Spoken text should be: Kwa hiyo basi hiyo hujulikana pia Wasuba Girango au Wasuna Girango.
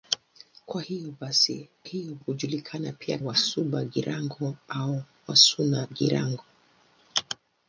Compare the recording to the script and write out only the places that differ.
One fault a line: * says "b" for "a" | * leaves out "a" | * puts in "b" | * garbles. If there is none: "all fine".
all fine